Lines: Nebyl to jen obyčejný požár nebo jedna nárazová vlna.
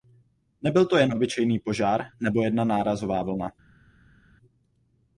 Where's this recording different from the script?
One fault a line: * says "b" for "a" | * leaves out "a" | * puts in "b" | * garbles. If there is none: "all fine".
all fine